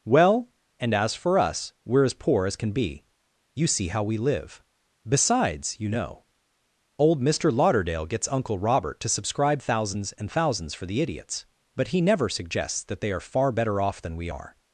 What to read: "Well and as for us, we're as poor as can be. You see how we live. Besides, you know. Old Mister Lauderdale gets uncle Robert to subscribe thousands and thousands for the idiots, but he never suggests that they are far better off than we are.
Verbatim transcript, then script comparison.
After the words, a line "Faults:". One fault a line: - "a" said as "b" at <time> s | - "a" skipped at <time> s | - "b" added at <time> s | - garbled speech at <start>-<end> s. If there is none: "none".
"Well and as for us, we're as poor as can be. You see how we live. Besides, you know. Old Mister Lauderdale gets uncle Robert to subscribe thousands and thousands for the idiots, but he never suggests that they are far better off than we are.
Faults:
none